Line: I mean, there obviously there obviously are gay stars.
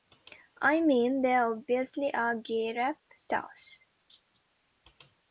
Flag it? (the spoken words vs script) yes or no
yes